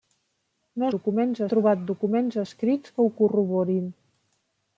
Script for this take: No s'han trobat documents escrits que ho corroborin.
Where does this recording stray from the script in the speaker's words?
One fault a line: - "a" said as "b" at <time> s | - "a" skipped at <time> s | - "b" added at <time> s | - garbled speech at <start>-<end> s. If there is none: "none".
- "s'han" said as "documents" at 0.9 s